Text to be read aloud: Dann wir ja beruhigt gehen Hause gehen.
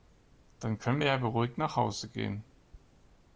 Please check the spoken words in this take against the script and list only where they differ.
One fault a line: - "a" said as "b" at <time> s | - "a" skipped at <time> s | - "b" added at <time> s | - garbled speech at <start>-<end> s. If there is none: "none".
- "können" added at 0.8 s
- "gehen" said as "nach" at 1.6 s